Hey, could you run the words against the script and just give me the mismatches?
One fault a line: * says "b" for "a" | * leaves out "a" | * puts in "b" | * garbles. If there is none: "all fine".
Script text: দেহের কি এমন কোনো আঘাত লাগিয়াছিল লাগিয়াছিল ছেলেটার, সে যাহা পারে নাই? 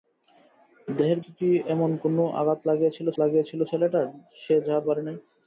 all fine